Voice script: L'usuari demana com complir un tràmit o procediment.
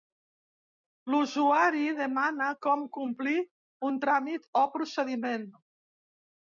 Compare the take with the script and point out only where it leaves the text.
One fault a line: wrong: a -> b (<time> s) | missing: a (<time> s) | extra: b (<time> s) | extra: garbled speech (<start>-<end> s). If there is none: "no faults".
no faults